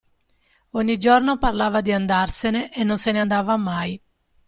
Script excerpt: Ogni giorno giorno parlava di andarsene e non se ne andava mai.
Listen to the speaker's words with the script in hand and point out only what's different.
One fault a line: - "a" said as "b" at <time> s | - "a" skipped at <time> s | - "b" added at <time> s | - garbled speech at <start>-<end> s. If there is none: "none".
- "giorno" skipped at 1.4 s